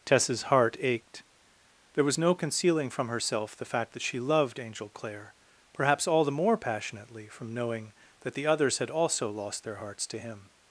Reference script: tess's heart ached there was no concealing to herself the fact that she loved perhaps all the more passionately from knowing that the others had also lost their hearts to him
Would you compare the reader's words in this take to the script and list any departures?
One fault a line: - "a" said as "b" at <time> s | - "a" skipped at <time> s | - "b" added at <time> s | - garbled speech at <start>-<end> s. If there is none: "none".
- "to" said as "from" at 2.9 s
- "angel clare" added at 4.6 s